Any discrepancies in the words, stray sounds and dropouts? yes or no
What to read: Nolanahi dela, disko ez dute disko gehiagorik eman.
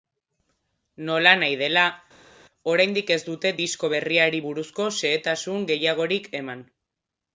yes